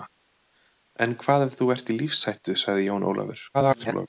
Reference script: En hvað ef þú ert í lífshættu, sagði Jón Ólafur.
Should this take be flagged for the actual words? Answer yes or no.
yes